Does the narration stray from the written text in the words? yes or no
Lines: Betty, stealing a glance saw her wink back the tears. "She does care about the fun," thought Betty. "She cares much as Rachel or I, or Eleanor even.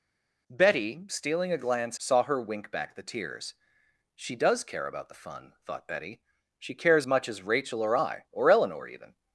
no